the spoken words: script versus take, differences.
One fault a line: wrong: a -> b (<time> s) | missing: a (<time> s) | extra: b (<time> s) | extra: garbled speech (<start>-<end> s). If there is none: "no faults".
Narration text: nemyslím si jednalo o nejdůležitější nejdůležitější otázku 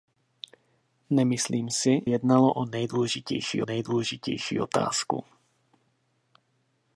no faults